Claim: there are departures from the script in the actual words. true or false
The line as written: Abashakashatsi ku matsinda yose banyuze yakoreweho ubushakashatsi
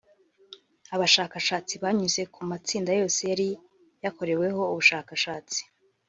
true